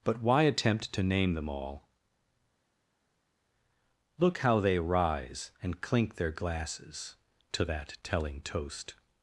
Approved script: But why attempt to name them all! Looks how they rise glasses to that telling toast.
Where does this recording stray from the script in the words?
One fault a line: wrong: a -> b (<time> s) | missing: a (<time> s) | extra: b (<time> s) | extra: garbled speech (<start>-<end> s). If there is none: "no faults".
wrong: Looks -> Look (4.2 s)
extra: and clink their (5.6 s)